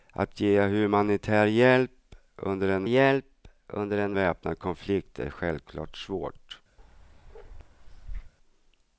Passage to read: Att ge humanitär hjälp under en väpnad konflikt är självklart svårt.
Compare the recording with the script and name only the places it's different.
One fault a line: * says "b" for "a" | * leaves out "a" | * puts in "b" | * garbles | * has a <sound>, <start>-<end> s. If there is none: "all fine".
* puts in "hjälp under en"
* has a bark, 6.8-8.3 s